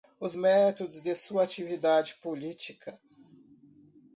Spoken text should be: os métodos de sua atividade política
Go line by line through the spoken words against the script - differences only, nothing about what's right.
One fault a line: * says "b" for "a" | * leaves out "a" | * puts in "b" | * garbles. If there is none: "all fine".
all fine